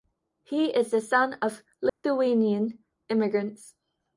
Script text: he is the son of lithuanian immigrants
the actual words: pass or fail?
pass